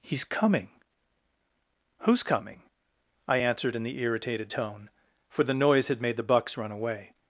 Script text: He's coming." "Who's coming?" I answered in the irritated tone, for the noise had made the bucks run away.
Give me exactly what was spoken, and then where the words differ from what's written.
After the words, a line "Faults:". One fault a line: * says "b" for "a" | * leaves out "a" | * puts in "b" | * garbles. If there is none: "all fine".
He's coming." "Who's coming?" I answered in the irritated tone, for the noise had made the bucks run away.
Faults:
all fine